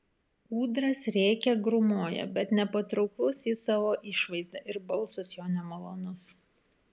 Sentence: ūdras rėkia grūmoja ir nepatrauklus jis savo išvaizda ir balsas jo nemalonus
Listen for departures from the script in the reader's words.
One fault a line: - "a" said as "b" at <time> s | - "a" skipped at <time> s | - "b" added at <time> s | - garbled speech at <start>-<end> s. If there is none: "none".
- "ir" said as "bet" at 2.4 s